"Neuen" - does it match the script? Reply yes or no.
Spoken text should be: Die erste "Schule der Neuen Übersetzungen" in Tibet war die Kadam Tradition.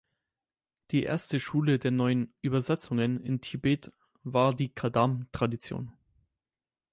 yes